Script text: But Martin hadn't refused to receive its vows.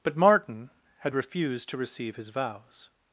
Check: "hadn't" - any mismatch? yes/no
yes